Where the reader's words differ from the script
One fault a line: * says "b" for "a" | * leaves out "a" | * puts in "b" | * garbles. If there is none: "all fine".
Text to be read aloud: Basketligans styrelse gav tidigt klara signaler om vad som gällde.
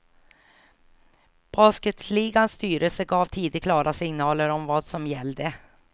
all fine